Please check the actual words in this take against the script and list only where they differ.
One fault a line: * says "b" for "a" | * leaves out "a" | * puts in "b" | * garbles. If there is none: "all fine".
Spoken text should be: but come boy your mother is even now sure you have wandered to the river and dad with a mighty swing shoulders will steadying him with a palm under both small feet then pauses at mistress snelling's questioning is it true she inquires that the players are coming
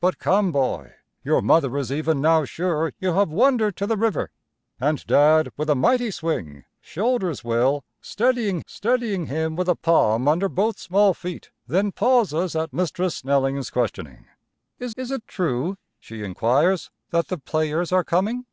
* puts in "steadying"
* puts in "is"